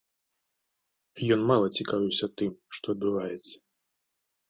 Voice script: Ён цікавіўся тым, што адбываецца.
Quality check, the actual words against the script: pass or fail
fail